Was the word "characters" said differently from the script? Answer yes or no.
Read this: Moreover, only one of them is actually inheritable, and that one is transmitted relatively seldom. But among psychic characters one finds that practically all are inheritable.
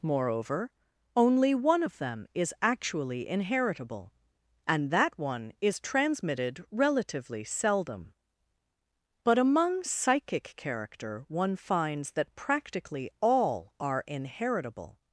yes